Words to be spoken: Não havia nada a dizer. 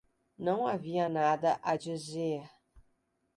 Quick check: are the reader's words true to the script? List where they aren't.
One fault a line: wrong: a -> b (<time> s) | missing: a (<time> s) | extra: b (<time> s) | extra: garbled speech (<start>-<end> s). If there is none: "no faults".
no faults